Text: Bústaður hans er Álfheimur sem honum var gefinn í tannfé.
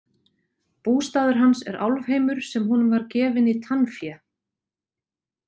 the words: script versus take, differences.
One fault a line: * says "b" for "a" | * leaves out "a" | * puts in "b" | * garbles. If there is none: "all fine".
all fine